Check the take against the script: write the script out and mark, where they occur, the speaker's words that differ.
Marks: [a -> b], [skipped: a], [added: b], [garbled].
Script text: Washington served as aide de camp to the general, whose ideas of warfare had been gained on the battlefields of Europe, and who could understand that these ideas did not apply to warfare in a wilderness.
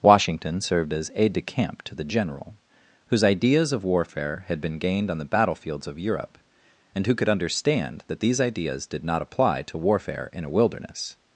Washington served as aide de camp to the general, whose ideas of warfare had been gained on the battlefields of Europe, and who could understand that these ideas did not apply to warfare in a wilderness.